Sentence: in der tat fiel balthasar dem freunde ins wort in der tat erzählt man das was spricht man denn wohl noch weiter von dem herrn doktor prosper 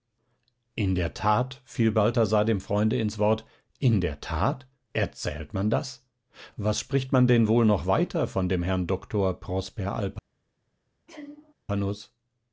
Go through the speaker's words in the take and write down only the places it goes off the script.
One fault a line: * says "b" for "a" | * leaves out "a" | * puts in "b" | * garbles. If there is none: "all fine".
all fine